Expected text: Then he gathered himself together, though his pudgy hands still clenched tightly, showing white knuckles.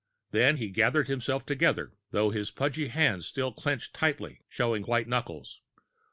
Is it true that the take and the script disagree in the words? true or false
false